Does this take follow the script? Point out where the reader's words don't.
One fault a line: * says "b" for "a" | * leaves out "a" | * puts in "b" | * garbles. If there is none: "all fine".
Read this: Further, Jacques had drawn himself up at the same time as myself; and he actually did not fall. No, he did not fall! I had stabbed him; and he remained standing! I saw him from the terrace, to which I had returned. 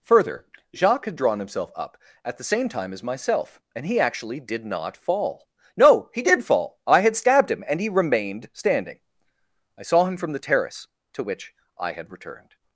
* leaves out "not"